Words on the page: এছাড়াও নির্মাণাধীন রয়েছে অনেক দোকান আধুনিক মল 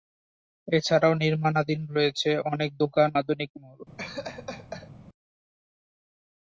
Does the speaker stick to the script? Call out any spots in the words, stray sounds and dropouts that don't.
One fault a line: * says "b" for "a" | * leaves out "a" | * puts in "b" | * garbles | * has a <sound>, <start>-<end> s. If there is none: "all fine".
* has a laugh, 4.0-4.9 s